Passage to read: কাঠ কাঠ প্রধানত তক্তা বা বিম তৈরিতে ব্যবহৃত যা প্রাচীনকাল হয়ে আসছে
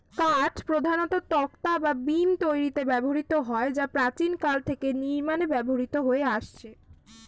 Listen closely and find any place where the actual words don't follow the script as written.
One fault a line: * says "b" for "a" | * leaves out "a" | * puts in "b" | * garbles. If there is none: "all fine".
* leaves out "কাঠ"
* puts in "হয়"
* puts in "থেকে নির্মাণে ব্যবহৃত"